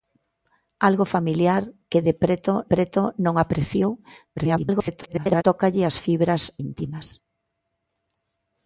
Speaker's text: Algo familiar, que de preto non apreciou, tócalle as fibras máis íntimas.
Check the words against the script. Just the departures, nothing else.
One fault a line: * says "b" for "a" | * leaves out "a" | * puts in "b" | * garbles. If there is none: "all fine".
* puts in "preto"
* garbles
* leaves out "máis"